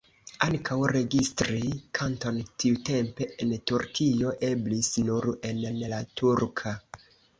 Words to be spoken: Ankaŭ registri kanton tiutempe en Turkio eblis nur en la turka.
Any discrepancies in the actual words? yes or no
yes